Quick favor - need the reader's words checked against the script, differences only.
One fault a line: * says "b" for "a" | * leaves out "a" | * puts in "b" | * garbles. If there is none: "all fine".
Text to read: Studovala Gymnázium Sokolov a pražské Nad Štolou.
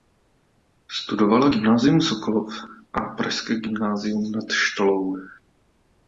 * puts in "Gymnázium"